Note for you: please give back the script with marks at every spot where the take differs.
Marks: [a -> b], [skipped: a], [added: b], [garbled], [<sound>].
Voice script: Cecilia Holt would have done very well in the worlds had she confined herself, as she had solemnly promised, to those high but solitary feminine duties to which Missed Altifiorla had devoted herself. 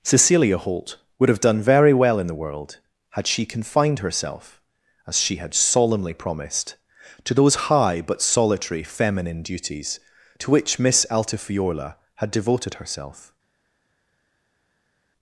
Cecilia Holt would have done very well in the [worlds -> world] had she confined herself, as she had solemnly promised, to those high but solitary feminine duties to which [Missed -> Miss] Altifiorla had devoted herself.